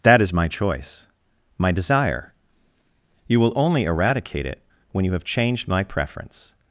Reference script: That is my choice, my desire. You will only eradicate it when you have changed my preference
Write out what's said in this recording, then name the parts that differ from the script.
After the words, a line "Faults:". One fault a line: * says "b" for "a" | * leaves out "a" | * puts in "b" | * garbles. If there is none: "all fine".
That is my choice, my desire. You will only eradicate it when you have changed my preference
Faults:
all fine